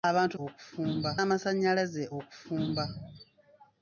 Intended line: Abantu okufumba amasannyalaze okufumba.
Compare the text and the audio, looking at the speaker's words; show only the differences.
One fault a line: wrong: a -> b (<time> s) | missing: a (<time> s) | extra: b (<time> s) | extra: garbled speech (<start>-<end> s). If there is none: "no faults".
no faults